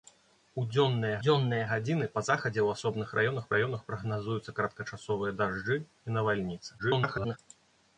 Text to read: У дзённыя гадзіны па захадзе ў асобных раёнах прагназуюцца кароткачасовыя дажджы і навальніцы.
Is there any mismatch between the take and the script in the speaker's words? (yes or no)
yes